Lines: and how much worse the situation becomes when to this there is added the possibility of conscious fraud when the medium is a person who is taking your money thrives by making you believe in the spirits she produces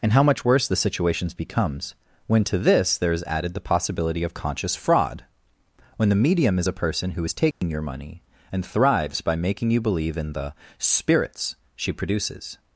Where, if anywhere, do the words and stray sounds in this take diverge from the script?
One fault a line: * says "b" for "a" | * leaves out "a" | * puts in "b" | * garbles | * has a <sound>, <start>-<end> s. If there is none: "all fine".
* has a dropout, 7.5-7.6 s
* puts in "and"